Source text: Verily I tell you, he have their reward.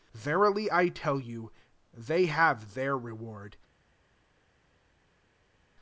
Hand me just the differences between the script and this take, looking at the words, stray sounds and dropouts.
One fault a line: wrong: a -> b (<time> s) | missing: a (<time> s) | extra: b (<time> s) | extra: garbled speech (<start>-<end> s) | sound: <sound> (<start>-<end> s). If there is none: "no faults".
wrong: he -> they (1.9 s)